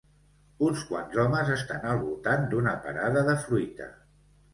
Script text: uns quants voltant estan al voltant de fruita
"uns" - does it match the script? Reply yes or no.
yes